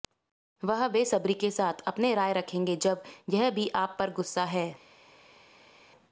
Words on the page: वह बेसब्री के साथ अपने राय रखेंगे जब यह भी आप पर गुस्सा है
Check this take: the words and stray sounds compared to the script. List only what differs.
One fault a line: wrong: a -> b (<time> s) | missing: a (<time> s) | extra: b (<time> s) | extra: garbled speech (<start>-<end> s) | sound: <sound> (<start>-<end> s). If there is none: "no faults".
no faults